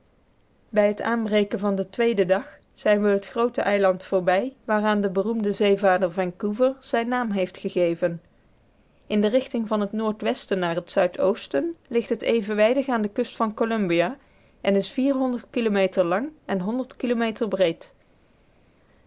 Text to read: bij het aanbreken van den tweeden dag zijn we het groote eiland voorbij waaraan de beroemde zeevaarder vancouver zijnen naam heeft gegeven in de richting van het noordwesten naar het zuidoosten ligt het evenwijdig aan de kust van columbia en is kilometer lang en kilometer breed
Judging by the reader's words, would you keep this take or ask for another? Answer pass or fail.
pass